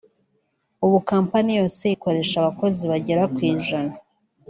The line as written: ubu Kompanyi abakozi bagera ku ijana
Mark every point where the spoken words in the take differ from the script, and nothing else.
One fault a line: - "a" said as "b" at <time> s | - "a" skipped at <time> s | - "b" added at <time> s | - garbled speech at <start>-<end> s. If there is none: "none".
- "yose ikoresha" added at 1.6 s